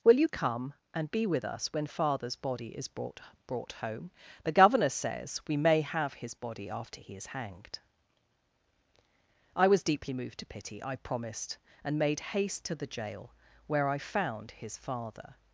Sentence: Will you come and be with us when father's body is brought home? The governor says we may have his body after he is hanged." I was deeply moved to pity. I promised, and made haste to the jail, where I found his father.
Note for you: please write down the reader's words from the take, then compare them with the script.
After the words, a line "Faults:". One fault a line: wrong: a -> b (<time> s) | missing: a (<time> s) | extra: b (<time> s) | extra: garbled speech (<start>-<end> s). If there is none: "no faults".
Will you come and be with us when father's body is brought brought home? The governor says we may have his body after he is hanged." I was deeply moved to pity. I promised, and made haste to the jail, where I found his father.
Faults:
extra: brought (3.5 s)